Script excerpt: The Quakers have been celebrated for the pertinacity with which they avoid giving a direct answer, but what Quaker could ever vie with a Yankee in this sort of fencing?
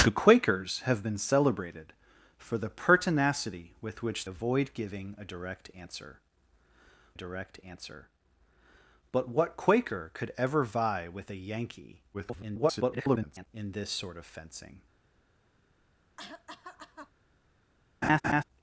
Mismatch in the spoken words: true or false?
true